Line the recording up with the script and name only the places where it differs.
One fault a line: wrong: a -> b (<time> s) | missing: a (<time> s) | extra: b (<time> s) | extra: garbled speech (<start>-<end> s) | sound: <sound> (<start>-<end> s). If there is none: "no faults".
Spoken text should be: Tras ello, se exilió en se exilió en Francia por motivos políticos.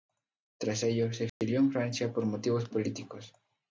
sound: dropout (1.3-1.4 s)
missing: se exilió en (1.7 s)